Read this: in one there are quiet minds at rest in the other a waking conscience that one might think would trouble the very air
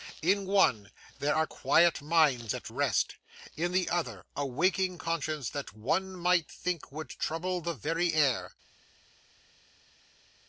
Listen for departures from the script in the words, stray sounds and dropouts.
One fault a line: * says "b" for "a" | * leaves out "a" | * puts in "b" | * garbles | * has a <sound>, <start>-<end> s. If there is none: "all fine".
all fine